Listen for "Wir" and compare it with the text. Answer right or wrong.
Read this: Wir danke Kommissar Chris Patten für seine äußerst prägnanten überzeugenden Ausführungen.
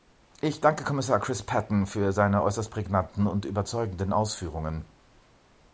wrong